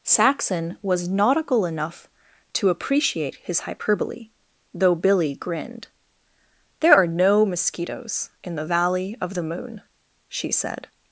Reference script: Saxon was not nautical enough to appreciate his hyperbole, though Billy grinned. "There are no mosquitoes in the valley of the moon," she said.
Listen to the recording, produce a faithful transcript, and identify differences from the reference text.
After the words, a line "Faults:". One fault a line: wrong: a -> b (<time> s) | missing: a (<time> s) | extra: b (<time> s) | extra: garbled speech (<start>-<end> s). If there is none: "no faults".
Saxon was nautical enough to appreciate his hyperbole, though Billy grinned. "There are no mosquitoes in the valley of the moon," she said.
Faults:
missing: not (1.1 s)